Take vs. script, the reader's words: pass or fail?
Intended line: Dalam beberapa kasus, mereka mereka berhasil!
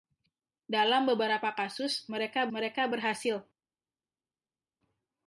pass